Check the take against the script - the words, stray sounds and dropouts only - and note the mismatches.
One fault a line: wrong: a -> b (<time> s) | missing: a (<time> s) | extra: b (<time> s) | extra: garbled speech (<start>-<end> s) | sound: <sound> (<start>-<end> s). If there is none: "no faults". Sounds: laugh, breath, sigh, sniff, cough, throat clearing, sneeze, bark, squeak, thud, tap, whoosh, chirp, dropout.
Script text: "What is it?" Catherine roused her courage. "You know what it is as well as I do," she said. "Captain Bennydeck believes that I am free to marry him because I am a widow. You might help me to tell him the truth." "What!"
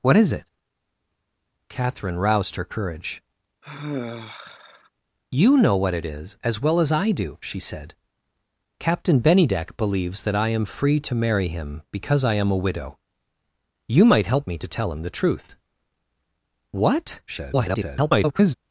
sound: sigh (3.6-4.9 s)
extra: garbled speech (17.3-18.5 s)